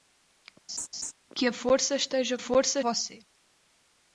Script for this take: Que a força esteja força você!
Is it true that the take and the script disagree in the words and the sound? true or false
true